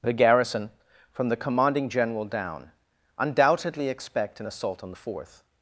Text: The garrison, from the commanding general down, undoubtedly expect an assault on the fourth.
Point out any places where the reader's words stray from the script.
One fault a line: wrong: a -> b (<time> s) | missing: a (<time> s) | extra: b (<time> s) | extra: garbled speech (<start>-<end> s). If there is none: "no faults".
no faults